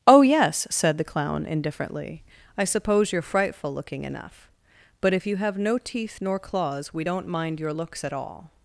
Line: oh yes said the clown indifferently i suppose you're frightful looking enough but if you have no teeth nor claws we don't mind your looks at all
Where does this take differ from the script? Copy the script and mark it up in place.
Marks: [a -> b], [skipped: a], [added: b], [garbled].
oh yes said the clown indifferently i suppose you're frightful looking enough but if you have no teeth nor claws we don't mind your looks at all